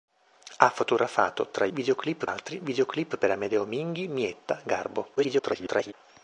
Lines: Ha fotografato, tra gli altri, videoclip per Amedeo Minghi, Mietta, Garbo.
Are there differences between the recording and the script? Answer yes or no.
yes